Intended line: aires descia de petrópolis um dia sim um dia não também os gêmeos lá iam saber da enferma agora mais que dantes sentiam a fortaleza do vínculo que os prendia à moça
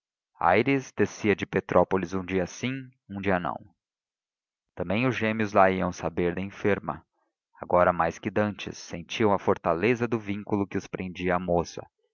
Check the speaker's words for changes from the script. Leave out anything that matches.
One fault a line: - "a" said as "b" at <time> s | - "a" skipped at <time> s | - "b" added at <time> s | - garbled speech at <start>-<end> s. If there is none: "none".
none